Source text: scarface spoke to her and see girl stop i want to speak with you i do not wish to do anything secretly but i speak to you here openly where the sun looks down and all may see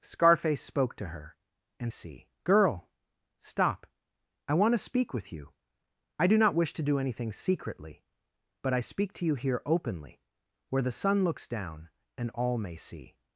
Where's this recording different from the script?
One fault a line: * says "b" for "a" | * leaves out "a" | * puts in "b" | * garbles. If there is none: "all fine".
all fine